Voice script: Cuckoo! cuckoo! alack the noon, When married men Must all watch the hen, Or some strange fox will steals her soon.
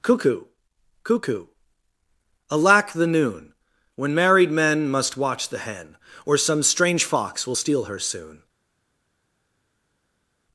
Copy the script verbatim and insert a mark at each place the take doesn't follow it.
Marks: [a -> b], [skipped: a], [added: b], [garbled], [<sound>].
Cuckoo! cuckoo! alack the noon, When married men Must [skipped: all] watch the hen, Or some strange fox will [steals -> steal] her soon.